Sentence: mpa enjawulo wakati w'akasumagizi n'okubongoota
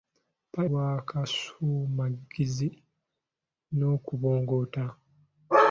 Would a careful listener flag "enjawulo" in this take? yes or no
yes